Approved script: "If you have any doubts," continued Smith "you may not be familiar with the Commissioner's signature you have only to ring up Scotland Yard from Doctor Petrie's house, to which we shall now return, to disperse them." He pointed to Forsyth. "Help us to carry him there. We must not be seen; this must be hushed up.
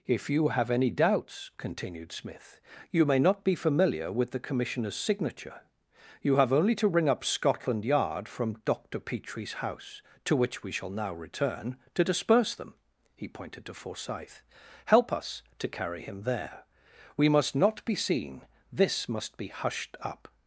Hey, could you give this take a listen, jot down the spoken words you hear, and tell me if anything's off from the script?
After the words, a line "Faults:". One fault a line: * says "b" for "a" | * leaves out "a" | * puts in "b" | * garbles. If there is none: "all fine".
"If you have any doubts," continued Smith "you may not be familiar with the Commissioner's signature you have only to ring up Scotland Yard from Doctor Petrie's house, to which we shall now return, to disperse them." He pointed to Forsyth. "Help us to carry him there. We must not be seen; this must be hushed up.
Faults:
all fine